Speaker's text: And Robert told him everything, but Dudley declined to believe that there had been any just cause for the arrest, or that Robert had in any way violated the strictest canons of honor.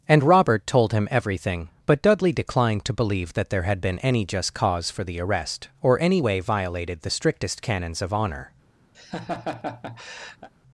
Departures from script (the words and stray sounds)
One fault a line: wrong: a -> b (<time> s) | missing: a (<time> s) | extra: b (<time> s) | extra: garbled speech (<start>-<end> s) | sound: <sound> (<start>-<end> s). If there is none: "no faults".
missing: that Robert had in (6.0 s)
sound: laugh (8.9-10.5 s)